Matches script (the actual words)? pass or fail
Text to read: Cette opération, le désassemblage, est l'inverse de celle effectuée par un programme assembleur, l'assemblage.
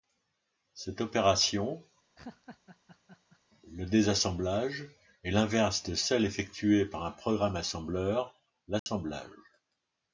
pass